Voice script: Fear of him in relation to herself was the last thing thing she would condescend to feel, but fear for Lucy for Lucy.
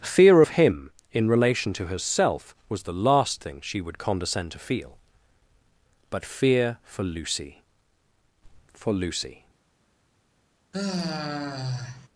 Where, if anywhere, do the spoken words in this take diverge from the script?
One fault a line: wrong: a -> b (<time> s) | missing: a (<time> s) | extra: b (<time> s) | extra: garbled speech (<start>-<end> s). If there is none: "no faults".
missing: thing (3.6 s)